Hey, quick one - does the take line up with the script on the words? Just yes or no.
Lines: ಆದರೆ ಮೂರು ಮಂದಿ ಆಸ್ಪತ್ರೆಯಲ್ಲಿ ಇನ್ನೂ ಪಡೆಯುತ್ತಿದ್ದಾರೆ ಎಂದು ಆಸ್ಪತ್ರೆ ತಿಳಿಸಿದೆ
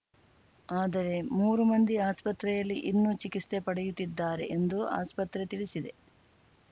no